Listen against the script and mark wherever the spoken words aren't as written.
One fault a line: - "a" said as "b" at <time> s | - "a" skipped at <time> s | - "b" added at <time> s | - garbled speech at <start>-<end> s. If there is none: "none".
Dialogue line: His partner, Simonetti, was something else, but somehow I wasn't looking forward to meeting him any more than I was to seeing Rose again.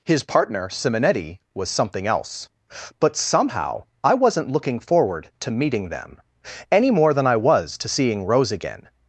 - "him" said as "them" at 5.9 s